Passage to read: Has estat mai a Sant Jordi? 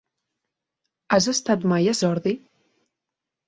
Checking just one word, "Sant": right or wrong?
wrong